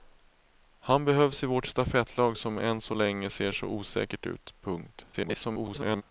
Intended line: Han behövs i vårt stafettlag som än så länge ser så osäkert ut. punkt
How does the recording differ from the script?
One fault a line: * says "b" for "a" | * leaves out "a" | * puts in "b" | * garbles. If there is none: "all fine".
* garbles